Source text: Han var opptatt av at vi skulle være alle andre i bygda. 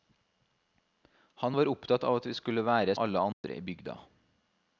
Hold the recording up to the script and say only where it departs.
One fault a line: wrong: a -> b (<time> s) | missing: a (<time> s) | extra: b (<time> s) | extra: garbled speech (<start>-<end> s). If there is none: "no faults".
no faults